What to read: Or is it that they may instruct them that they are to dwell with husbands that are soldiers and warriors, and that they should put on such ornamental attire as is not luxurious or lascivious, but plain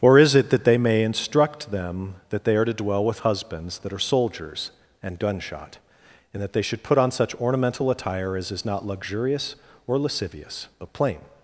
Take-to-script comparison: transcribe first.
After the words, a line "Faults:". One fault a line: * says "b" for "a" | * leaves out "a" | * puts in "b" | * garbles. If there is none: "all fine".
Or is it that they may instruct them that they are to dwell with husbands that are soldiers and gunshot, and that they should put on such ornamental attire as is not luxurious or lascivious, but plain
Faults:
* says "gunshot" for "warriors"